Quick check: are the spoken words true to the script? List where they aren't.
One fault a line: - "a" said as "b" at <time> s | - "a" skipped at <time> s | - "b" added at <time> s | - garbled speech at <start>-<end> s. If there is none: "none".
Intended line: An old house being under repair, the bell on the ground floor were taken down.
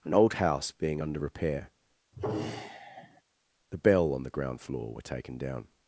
none